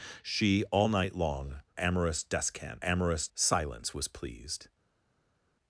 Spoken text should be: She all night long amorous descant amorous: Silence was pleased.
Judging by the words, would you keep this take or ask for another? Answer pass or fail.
pass